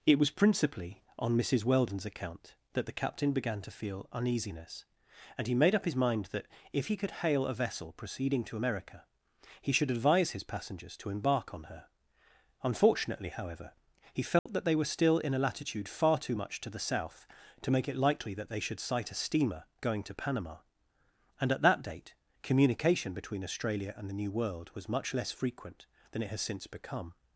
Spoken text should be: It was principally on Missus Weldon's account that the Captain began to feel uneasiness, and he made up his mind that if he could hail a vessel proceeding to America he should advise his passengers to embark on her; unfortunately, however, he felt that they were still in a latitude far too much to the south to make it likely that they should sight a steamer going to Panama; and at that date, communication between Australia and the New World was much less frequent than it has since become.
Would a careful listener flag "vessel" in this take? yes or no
no